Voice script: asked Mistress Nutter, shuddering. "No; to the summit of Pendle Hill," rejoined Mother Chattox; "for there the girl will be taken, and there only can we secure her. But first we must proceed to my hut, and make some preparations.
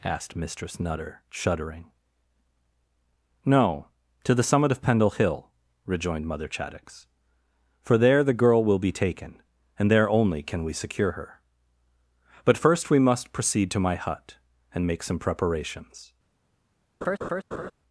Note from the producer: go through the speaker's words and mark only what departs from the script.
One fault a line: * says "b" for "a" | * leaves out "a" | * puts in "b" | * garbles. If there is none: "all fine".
all fine